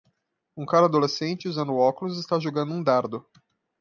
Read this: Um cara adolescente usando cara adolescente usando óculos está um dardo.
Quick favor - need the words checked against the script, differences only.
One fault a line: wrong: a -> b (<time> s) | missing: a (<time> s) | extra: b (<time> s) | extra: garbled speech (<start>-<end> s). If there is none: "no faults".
missing: cara adolescente usando (1.8 s)
extra: jogando (2.4 s)